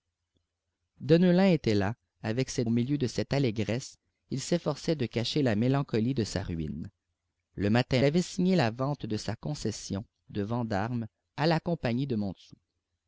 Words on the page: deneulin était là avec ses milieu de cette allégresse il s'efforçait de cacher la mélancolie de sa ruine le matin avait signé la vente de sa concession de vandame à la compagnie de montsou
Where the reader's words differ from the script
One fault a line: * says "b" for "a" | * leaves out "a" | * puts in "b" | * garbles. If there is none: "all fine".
all fine